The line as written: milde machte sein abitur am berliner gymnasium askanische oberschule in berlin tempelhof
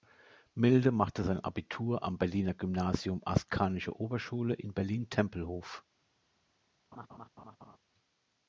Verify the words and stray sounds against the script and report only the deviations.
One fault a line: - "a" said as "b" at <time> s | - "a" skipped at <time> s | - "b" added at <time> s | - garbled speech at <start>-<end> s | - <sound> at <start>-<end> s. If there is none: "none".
- laugh at 6.9-7.8 s